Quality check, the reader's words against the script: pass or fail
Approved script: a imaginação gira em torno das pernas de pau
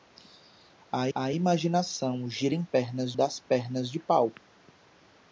fail